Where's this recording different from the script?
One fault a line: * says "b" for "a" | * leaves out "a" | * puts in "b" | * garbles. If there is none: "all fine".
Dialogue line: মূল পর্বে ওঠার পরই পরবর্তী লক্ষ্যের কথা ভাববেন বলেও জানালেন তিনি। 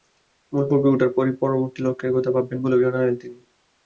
all fine